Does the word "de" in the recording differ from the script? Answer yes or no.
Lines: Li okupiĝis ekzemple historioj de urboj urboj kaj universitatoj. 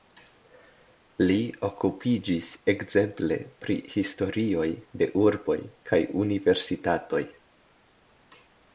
no